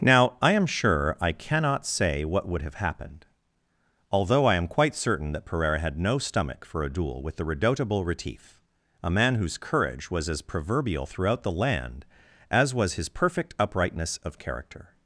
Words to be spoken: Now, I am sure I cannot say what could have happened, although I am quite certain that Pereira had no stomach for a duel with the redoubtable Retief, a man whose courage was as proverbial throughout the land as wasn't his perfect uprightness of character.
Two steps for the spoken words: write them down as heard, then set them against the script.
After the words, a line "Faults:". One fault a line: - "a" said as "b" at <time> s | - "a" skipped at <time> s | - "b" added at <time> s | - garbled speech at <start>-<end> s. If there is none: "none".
Now, I am sure I cannot say what would have happened, although I am quite certain that Pereira had no stomach for a duel with the redoubtable Retief, a man whose courage was as proverbial throughout the land as was his perfect uprightness of character.
Faults:
- "could" said as "would" at 2.5 s
- "wasn't" said as "was" at 12.7 s